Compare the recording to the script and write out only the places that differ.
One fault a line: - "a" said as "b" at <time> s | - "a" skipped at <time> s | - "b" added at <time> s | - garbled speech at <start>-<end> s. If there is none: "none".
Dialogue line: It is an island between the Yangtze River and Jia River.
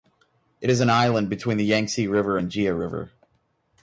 none